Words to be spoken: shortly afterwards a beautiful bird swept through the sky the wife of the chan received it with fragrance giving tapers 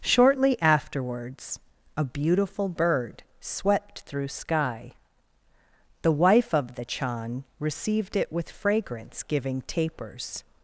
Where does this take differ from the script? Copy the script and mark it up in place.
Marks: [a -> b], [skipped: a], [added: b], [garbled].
shortly afterwards a beautiful bird swept through [skipped: the] sky the wife of the chan received it with fragrance giving tapers